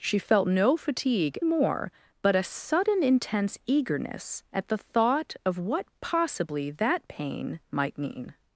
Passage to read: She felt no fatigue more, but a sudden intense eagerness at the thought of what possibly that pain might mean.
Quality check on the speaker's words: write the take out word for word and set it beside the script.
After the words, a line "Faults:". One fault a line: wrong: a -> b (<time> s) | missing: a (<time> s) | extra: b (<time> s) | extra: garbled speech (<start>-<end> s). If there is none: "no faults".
She felt no fatigue more, but a sudden intense eagerness at the thought of what possibly that pain might mean.
Faults:
no faults